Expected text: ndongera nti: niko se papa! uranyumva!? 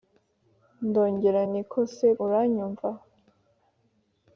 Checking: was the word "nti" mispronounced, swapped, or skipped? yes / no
yes